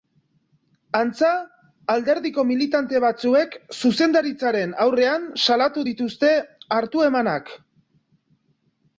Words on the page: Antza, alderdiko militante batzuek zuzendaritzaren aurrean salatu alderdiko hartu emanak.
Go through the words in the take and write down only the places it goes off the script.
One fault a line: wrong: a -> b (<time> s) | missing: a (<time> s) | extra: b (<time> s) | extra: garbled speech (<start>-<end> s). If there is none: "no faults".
wrong: alderdiko -> dituzte (5.9 s)